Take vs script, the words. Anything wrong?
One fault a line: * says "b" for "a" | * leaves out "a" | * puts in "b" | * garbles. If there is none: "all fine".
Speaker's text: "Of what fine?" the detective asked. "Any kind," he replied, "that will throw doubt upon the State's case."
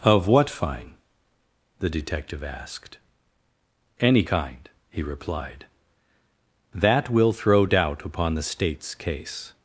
all fine